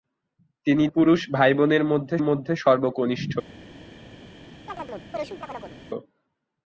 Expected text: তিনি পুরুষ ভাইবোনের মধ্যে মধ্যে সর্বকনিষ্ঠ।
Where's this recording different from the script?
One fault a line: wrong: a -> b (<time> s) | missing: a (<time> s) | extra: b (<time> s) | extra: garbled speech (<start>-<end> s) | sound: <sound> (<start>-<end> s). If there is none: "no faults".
sound: chirp (4.7-5.8 s)